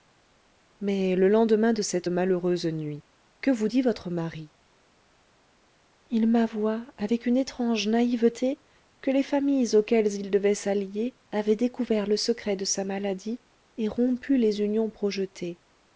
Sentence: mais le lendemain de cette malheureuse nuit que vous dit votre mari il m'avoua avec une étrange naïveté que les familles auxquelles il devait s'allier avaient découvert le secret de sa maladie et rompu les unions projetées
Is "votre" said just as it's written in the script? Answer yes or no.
yes